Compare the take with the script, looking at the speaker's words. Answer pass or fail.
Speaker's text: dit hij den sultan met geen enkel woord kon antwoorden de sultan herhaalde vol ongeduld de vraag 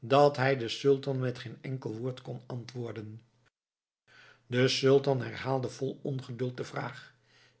fail